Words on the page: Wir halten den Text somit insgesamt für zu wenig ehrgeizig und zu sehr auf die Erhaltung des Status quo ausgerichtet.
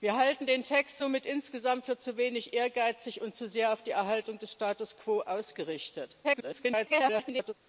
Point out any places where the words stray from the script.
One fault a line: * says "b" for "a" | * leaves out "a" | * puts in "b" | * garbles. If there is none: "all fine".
* garbles